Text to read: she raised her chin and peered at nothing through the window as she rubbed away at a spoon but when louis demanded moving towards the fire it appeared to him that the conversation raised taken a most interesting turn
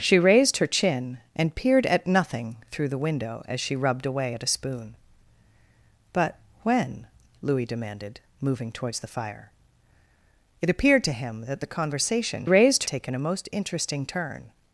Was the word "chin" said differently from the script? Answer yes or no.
no